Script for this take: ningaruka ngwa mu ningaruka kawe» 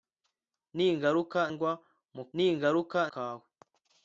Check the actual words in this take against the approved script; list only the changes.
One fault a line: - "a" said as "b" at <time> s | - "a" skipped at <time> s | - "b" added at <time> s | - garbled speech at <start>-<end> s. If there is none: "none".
none